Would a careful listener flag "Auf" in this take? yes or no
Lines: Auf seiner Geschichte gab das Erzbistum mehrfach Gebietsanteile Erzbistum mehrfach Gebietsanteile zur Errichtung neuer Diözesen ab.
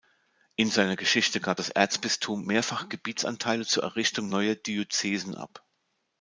yes